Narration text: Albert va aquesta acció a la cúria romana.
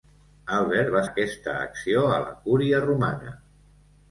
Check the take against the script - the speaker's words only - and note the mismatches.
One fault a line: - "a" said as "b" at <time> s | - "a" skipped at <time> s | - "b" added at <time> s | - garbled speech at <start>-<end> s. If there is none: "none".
none